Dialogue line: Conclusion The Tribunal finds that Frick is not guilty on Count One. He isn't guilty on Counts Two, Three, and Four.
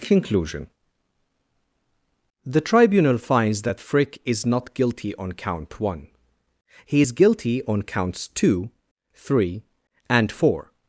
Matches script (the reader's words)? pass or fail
fail